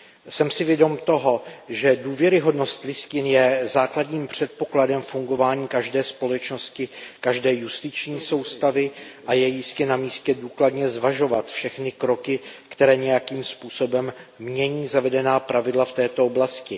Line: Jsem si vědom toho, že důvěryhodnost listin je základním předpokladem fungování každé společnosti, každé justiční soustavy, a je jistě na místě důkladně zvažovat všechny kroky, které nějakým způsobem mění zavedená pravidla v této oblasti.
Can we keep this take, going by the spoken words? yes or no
yes